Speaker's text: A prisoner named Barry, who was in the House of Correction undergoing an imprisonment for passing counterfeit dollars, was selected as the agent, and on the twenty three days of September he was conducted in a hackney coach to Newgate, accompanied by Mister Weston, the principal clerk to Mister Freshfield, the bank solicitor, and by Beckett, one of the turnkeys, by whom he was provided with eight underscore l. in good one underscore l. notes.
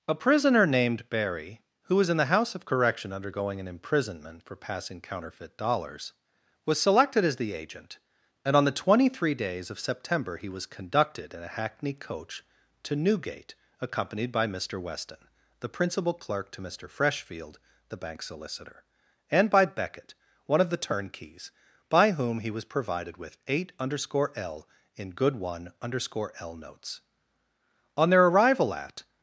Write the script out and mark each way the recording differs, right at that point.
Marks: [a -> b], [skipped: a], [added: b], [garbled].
A prisoner named Barry, who was in the House of Correction undergoing an imprisonment for passing counterfeit dollars, was selected as the agent, and on the twenty three days of September he was conducted in a hackney coach to Newgate, accompanied by Mister Weston, the principal clerk to Mister Freshfield, the bank solicitor, and by Beckett, one of the turnkeys, by whom he was provided with eight underscore l. in good one underscore l. notes. [added: On their arrival at]